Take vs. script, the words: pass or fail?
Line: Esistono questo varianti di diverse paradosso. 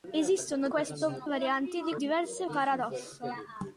pass